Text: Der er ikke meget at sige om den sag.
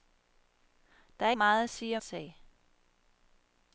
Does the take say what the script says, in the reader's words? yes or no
no